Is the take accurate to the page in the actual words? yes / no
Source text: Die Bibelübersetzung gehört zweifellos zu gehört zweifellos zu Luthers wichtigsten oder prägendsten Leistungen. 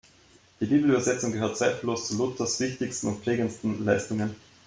no